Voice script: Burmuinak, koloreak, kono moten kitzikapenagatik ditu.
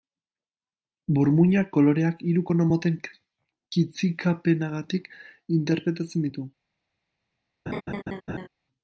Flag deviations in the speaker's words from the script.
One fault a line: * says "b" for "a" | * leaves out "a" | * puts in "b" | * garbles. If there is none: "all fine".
* puts in "hiru"
* puts in "interpretatzen"